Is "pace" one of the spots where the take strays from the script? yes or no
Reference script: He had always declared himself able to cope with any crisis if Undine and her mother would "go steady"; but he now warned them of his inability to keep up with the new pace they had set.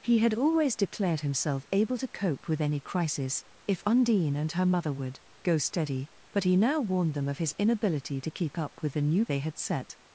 yes